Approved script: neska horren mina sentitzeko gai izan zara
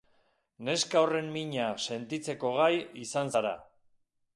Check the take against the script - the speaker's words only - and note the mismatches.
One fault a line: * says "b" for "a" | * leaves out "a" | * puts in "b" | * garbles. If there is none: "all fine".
all fine